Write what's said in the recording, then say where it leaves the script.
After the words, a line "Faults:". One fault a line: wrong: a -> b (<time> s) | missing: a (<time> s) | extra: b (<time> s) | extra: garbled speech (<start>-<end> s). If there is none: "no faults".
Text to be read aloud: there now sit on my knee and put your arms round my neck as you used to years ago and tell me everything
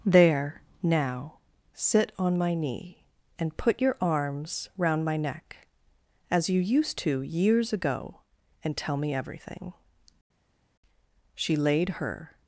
there now sit on my knee and put your arms round my neck as you used to years ago and tell me everything she laid her
Faults:
extra: she laid her (11.3 s)